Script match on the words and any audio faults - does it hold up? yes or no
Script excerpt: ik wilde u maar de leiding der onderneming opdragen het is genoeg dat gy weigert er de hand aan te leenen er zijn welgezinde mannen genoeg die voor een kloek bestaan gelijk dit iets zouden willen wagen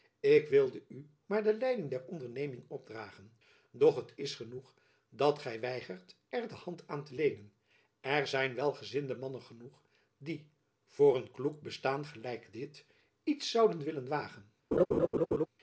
no